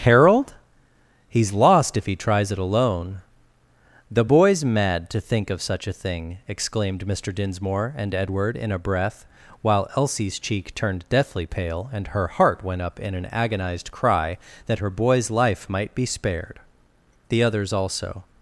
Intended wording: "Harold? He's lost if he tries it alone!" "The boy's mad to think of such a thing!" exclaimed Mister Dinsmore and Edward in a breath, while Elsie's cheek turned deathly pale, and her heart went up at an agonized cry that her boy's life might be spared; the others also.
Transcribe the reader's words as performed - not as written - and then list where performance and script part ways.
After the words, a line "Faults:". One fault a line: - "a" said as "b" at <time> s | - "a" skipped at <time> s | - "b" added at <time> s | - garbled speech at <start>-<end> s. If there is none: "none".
"Harold? He's lost if he tries it alone!" "The boy's mad to think of such a thing!" exclaimed Mister Dinsmore and Edward in a breath, while Elsie's cheek turned deathly pale, and her heart went up in an agonized cry that her boy's life might be spared; the others also.
Faults:
- "at" said as "in" at 13.0 s